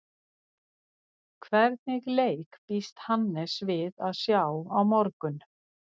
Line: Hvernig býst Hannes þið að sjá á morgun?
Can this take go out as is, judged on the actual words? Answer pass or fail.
fail